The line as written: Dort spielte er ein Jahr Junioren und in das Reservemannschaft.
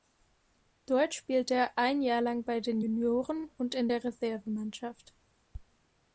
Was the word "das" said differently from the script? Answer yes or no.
yes